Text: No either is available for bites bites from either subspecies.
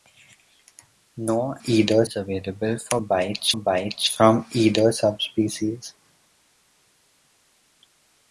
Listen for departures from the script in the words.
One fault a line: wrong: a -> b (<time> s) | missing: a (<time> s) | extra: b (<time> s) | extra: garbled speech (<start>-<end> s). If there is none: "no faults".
no faults